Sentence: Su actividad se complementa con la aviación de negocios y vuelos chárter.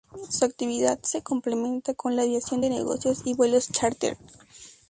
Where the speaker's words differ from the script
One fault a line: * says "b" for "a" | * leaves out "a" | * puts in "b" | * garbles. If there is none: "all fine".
all fine